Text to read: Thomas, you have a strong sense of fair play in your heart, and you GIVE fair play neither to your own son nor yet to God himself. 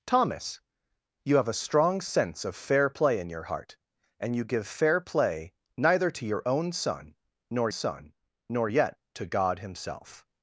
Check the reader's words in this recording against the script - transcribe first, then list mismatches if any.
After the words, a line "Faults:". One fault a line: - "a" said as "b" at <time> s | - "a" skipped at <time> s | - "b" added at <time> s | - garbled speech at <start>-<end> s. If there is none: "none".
Thomas, you have a strong sense of fair play in your heart, and you GIVE fair play neither to your own son nor son nor yet to God himself.
Faults:
- "son nor" added at 7.7 s